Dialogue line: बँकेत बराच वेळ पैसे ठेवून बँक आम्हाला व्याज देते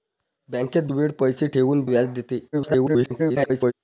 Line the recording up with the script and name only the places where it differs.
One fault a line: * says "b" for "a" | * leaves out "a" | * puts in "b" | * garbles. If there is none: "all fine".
* leaves out "बराच"
* leaves out "बँक आम्हाला"
* garbles